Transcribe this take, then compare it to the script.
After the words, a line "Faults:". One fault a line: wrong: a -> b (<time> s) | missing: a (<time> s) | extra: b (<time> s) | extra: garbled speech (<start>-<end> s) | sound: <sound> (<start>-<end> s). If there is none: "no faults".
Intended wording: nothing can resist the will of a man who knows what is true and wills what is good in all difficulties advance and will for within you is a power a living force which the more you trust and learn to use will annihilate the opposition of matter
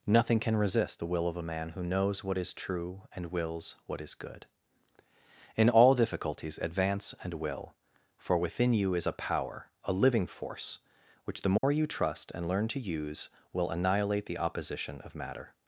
nothing can resist the will of a man who knows what is true and wills what is good in all difficulties advance and will for within you is a power a living force which the more you trust and learn to use will annihilate the opposition of matter
Faults:
sound: dropout (11.6-11.6 s)